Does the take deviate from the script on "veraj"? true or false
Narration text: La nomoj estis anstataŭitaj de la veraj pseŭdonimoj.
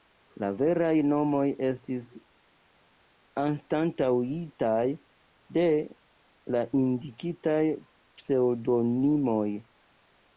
true